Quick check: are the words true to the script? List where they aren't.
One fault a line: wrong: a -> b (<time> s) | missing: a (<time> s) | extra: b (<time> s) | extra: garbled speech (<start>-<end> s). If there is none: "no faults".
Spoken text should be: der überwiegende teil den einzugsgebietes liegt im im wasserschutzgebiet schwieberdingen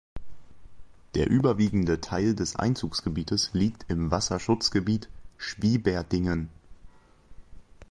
wrong: den -> des (2.3 s)
missing: im (4.1 s)